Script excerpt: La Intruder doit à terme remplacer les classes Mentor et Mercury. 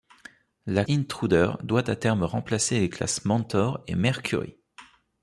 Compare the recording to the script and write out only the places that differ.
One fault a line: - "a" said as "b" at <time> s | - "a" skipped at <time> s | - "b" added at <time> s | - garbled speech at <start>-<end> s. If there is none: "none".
none